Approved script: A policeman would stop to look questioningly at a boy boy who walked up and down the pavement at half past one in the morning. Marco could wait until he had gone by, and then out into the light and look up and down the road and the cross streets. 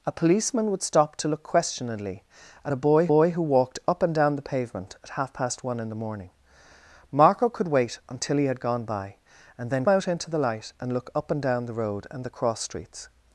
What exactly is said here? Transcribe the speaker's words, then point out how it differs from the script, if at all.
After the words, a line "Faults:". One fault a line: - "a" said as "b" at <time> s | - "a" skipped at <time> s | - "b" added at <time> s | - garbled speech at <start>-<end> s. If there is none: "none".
A policeman would stop to look questioningly at a boy boy who walked up and down the pavement at half past one in the morning. Marco could wait until he had gone by, and then out into the light and look up and down the road and the cross streets.
Faults:
none